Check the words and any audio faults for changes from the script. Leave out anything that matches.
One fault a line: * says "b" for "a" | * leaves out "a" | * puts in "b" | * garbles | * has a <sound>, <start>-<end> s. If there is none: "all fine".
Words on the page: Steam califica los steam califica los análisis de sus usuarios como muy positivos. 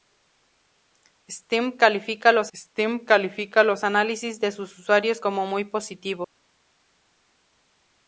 all fine